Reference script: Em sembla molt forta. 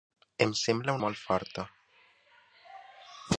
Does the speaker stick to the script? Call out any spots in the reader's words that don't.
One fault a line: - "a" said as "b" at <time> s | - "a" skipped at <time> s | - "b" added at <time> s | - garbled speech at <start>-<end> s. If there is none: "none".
none